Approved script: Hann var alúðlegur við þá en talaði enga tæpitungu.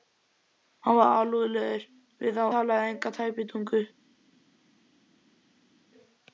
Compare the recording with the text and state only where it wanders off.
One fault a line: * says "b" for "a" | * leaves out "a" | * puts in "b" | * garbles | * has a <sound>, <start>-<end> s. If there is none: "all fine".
* leaves out "en"